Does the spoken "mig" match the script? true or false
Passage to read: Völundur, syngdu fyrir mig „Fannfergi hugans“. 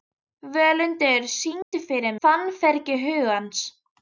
false